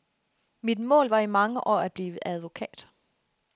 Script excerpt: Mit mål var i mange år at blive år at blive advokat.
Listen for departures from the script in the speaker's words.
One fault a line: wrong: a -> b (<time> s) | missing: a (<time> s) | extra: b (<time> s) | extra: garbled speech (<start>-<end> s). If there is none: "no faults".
missing: år at blive (2.3 s)